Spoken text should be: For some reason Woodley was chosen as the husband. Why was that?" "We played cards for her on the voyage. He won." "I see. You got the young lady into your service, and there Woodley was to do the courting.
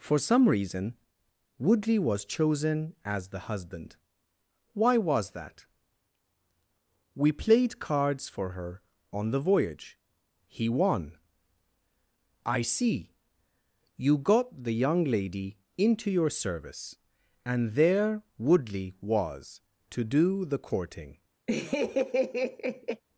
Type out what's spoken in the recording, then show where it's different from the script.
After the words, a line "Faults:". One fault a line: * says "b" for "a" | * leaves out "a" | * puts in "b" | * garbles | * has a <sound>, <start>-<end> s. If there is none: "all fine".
For some reason Woodley was chosen as the husband. Why was that?" "We played cards for her on the voyage. He won." "I see. You got the young lady into your service, and there Woodley was to do the courting.
Faults:
* has a laugh, 21.5-23.0 s